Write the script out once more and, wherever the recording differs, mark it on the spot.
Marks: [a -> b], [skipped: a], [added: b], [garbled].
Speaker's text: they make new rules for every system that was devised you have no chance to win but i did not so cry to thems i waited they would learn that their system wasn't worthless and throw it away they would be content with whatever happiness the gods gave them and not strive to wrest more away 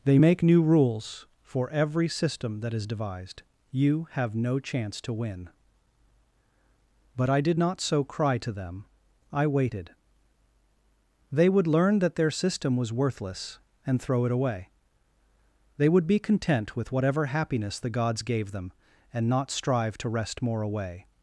they make new rules for every system that [was -> is] devised you have no chance to win but i did not so cry to [thems -> them] i waited they would learn that their system [wasn't -> was] worthless and throw it away they would be content with whatever happiness the gods gave them and not strive to wrest more away